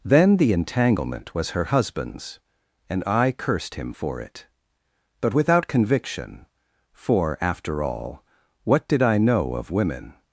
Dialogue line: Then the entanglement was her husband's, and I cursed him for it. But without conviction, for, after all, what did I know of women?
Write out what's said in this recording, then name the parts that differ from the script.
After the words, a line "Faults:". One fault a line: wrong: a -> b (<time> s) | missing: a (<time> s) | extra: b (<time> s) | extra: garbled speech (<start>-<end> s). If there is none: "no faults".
Then the entanglement was her husband's, and I cursed him for it. But without conviction, for, after all, what did I know of women?
Faults:
no faults